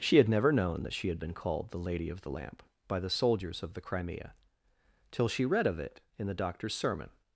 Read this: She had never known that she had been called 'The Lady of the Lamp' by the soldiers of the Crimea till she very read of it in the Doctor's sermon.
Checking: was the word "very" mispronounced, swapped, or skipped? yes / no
yes